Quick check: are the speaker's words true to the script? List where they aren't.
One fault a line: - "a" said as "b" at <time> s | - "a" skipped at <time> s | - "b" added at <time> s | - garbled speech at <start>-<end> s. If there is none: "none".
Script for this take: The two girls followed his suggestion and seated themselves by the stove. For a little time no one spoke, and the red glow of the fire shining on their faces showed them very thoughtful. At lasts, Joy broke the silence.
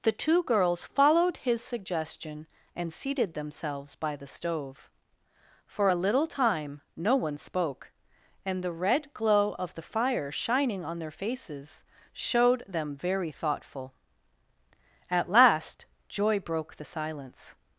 - "lasts" said as "last" at 15.3 s